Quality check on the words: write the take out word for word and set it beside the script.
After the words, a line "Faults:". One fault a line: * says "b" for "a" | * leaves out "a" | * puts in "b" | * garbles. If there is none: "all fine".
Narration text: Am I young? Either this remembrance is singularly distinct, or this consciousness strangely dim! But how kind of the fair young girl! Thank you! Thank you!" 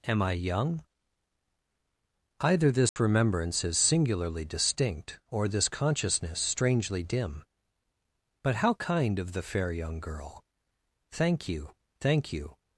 Am I young? Either this remembrance is singularly distinct, or this consciousness strangely dim! But how kind of the fair young girl! Thank you! Thank you!"
Faults:
all fine